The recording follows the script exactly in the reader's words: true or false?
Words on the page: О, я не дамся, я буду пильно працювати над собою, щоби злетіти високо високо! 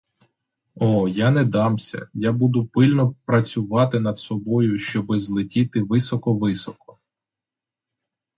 true